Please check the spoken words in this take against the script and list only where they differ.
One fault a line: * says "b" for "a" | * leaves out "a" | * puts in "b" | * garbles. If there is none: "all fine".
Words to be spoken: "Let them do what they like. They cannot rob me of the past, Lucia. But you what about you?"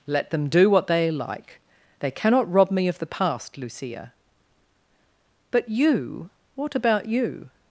all fine